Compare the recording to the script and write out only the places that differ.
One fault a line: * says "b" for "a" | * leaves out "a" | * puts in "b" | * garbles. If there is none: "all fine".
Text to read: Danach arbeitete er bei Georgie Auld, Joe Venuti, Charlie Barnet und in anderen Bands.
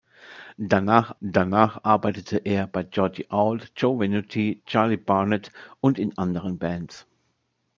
* puts in "danach"